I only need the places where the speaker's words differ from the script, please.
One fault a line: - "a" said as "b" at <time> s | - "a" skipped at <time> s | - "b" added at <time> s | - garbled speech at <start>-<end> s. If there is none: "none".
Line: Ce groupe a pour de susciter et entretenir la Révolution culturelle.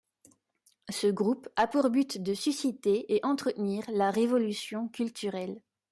- "but" added at 1.9 s